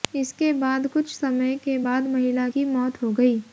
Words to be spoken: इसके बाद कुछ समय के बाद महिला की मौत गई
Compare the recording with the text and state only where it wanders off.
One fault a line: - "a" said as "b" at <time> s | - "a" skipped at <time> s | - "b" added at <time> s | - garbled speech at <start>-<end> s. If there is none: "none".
- "हो" added at 3.0 s